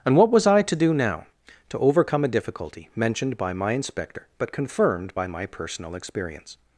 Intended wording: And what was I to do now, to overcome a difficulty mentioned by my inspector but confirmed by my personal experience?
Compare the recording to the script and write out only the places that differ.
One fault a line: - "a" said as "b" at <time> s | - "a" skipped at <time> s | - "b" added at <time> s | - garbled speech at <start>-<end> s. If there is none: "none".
none